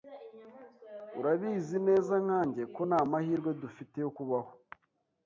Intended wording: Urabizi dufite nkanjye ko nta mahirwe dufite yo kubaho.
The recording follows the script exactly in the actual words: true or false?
false